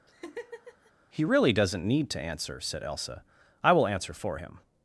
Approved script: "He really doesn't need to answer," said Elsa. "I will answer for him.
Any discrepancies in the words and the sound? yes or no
yes